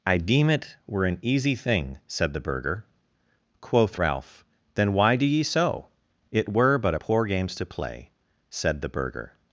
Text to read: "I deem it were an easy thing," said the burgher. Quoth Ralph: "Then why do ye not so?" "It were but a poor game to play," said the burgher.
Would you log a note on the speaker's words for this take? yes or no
yes